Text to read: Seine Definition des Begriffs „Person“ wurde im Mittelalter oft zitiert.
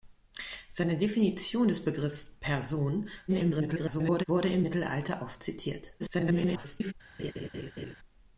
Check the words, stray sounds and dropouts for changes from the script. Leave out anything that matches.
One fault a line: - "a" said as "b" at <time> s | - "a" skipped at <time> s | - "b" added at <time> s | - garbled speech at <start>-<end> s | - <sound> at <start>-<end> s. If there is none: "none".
- garbled speech at 3.3-4.2 s
- garbled speech at 6.0-6.9 s
- laugh at 7.2-8.0 s